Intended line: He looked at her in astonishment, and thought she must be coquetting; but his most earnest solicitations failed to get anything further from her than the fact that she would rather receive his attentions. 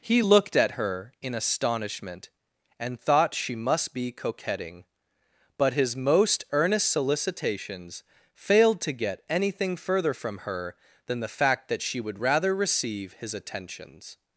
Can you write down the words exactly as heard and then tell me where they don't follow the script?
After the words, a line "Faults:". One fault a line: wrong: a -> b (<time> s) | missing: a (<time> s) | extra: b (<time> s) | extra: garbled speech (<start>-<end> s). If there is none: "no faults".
He looked at her in astonishment, and thought she must be coquetting; but his most earnest solicitations failed to get anything further from her than the fact that she would rather receive his attentions.
Faults:
no faults